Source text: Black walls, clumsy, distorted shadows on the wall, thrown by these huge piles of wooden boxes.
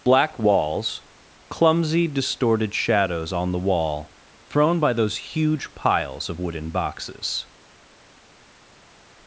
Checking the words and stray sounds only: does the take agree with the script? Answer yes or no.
no